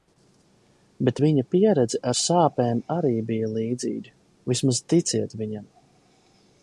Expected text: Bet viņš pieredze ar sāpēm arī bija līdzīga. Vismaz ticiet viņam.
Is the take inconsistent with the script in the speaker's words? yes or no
yes